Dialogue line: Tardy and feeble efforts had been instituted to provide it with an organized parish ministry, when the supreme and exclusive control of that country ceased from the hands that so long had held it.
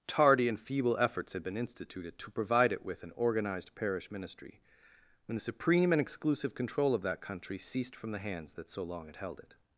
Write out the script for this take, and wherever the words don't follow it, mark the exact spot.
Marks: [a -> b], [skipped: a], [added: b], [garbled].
Tardy and feeble efforts had been instituted to provide it with an organized parish ministry, when the supreme and exclusive control of that country ceased from the hands that so long had held it.